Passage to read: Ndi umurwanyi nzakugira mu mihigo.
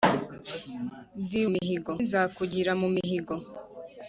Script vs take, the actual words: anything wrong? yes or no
yes